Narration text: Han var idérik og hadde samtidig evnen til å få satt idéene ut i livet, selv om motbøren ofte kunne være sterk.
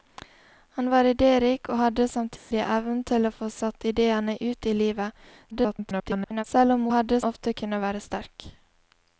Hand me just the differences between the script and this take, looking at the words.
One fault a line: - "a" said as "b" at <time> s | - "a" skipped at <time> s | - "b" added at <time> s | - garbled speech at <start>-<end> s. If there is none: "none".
- garbled speech at 5.5-6.4 s
- "motbøren" said as "hadde" at 6.9 s